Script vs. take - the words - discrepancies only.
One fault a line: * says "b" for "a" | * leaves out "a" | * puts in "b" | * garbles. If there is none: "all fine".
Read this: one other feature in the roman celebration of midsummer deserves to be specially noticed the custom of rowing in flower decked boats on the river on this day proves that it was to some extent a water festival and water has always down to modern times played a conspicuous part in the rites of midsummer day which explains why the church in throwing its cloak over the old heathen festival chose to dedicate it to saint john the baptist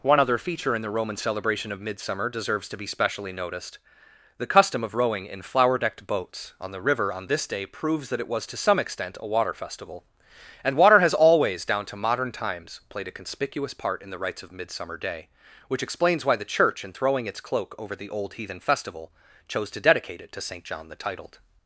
* says "titled" for "baptist"